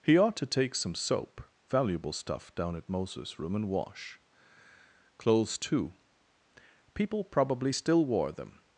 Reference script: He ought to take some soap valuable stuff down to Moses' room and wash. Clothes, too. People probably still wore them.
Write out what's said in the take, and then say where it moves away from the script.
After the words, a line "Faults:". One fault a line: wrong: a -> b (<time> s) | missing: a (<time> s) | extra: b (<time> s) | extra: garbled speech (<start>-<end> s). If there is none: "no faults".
He ought to take some soap valuable stuff down at Moses' room and wash. Clothes, too. People probably still wore them.
Faults:
wrong: to -> at (2.8 s)